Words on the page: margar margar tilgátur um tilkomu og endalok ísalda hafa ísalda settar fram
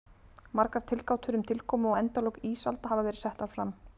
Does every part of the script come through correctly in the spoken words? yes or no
no